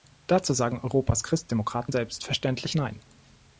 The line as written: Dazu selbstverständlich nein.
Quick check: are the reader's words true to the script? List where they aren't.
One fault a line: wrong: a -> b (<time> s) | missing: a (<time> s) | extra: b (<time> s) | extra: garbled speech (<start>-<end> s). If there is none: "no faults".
extra: sagen Europas Christdemokraten (0.5 s)